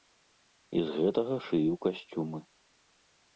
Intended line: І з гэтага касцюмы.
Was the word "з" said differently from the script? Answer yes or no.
no